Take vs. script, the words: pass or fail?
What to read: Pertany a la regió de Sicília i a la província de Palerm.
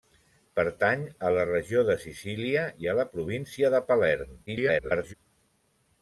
fail